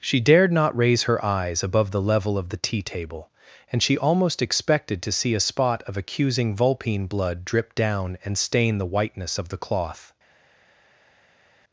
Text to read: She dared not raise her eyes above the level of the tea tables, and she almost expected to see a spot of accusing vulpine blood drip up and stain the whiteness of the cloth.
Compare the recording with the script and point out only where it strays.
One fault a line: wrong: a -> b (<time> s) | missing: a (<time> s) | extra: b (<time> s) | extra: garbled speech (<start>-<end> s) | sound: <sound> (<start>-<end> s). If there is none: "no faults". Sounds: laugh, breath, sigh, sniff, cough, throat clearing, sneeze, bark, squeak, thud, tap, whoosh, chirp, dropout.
wrong: tables -> table (2.8 s)
wrong: up -> down (7.8 s)